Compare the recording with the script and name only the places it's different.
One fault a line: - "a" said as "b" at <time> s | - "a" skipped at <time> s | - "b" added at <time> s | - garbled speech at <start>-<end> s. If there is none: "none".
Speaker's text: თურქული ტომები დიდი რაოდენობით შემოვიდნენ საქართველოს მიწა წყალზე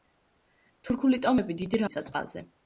- "რაოდენობით შემოვიდნენ საქართველოს" skipped at 1.8 s